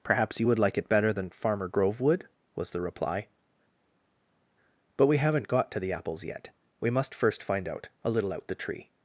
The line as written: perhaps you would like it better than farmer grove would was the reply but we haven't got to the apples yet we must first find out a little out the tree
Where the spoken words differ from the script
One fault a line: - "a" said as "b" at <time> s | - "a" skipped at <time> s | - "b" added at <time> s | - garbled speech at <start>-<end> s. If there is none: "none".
none